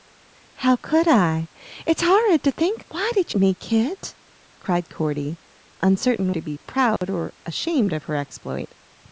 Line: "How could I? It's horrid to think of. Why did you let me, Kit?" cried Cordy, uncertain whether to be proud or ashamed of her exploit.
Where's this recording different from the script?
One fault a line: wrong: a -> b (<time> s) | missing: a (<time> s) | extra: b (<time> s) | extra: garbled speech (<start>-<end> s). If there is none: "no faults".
missing: of (2.8 s)
missing: you let (3.3 s)
missing: whether (6.3 s)